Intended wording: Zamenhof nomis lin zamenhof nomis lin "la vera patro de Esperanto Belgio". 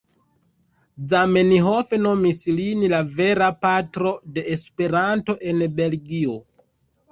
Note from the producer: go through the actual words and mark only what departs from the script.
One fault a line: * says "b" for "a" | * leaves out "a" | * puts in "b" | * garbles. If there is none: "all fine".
* leaves out "zamenhof nomis lin"
* puts in "en"